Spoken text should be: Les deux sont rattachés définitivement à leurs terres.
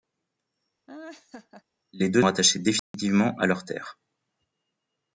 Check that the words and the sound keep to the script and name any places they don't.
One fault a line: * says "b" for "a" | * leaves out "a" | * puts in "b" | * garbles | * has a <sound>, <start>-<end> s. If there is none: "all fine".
* has a laugh, 0.9-1.6 s
* leaves out "sont"
* has a dropout, 2.8-2.9 s